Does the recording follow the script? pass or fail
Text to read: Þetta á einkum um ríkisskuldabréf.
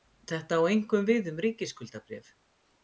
fail